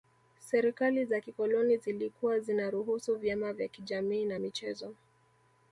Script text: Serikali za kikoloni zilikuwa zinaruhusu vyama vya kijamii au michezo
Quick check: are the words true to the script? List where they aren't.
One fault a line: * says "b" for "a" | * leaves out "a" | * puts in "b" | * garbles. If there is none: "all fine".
* says "na" for "au"